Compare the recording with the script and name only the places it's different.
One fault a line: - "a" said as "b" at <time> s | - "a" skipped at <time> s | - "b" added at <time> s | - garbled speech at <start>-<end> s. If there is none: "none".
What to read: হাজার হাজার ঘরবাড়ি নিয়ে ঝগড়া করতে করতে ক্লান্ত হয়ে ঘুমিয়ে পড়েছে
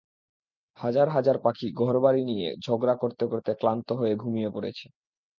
- "পাখি" added at 1.4 s